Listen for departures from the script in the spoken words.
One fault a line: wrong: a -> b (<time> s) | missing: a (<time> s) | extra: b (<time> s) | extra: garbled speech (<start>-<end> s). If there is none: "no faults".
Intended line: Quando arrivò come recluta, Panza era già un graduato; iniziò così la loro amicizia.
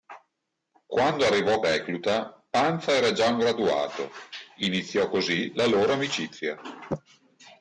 missing: come (1.6 s)